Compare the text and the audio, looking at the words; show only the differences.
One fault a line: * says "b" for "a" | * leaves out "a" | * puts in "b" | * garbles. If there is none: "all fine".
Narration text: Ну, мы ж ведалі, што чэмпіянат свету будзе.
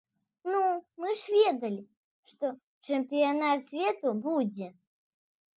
all fine